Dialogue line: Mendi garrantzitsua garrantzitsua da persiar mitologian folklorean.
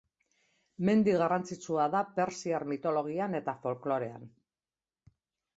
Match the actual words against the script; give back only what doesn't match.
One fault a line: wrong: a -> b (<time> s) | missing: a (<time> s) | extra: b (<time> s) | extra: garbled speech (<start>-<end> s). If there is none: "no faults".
missing: garrantzitsua (1.9 s)
extra: eta (3.4 s)